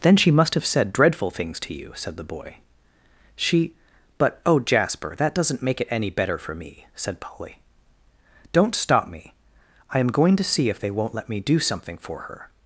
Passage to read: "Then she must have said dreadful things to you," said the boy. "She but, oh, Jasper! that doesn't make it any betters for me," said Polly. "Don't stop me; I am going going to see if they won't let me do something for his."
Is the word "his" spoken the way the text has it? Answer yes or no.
no